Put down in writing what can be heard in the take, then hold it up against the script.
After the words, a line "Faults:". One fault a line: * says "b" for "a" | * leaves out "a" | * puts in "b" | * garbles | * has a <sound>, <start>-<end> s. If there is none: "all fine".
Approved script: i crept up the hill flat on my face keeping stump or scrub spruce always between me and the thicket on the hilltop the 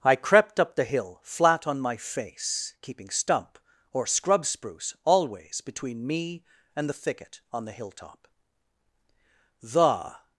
i crept up the hill flat on my face keeping stump or scrub spruce always between me and the thicket on the hilltop the
Faults:
all fine